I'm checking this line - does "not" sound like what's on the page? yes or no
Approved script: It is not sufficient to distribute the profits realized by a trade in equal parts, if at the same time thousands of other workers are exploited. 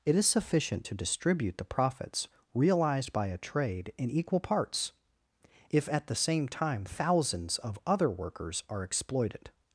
no